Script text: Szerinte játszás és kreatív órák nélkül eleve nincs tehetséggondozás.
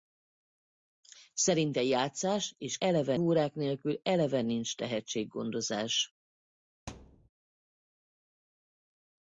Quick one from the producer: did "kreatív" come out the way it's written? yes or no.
no